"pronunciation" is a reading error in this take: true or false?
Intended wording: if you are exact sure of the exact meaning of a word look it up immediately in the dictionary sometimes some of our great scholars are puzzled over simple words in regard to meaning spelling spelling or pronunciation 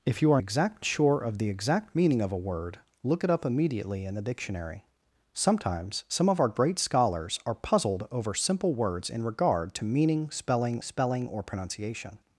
false